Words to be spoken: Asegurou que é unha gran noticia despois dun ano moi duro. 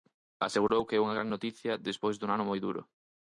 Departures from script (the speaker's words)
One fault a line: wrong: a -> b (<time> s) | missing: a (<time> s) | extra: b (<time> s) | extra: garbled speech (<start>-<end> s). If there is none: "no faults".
no faults